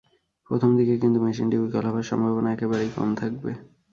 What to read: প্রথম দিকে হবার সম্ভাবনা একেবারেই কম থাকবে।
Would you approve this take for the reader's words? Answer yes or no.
no